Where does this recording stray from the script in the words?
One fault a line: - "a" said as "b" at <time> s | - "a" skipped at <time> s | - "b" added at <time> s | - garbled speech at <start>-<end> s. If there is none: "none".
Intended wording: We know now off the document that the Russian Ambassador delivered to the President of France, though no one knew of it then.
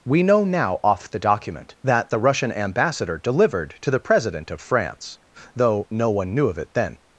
none